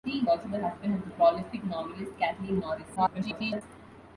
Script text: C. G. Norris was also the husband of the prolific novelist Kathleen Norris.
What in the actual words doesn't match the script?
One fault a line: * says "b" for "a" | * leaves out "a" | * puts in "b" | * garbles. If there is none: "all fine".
* leaves out "G Norris was"
* garbles